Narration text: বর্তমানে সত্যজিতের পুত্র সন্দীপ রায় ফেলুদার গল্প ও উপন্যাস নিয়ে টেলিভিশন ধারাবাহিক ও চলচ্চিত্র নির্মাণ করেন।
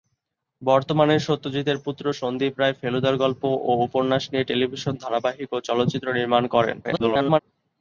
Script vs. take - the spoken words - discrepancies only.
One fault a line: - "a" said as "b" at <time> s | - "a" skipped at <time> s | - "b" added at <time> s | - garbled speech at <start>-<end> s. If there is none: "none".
- garbled speech at 6.8-7.4 s